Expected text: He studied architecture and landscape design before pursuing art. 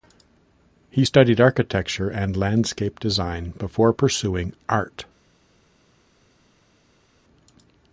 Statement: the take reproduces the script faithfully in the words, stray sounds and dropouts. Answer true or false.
true